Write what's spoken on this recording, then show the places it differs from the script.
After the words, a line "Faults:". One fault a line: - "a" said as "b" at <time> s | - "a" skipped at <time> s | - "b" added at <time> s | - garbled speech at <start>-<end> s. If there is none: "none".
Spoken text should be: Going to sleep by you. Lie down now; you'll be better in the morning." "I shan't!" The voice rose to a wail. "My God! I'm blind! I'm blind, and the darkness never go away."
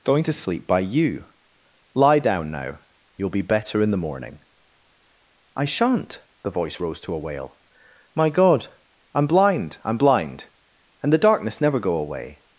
Going to sleep by you. Lie down now; you'll be better in the morning." "I shan't!" The voice rose to a wail. "My God! I'm blind! I'm blind, and the darkness never go away."
Faults:
none